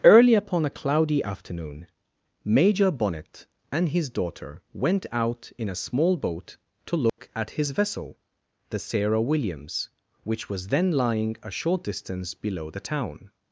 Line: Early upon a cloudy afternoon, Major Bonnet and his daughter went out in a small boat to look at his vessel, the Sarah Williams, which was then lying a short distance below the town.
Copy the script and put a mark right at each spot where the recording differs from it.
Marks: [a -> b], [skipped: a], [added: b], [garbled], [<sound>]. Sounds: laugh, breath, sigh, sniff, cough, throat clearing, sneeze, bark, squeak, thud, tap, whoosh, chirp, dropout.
Early upon a cloudy afternoon, Major Bonnet and his daughter went out in a small boat to look [dropout] at his vessel, the Sarah Williams, which was then lying a short distance below the town.